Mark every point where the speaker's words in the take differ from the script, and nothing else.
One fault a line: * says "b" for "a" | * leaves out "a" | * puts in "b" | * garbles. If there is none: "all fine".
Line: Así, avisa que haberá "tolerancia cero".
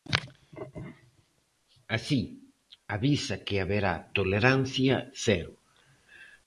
all fine